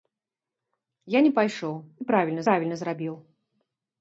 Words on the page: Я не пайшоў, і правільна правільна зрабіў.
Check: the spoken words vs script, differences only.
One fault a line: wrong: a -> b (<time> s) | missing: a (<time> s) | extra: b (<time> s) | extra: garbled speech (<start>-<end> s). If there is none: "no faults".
no faults